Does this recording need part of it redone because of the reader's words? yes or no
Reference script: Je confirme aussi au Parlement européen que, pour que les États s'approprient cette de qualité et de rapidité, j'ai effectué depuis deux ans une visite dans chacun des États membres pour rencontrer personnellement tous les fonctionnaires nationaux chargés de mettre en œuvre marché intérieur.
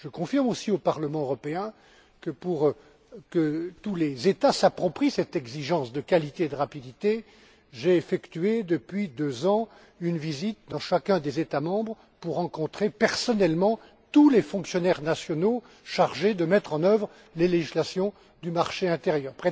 yes